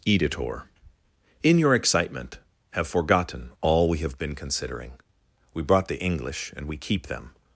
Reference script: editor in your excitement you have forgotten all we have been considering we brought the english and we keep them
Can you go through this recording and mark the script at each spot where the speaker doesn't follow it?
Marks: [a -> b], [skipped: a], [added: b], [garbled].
editor in your excitement [skipped: you] have forgotten all we have been considering we brought the english and we keep them